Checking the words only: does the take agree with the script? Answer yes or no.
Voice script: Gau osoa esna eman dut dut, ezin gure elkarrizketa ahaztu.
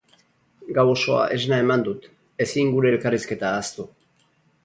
no